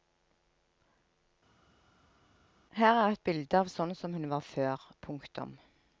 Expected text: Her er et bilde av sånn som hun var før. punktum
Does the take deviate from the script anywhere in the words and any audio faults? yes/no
no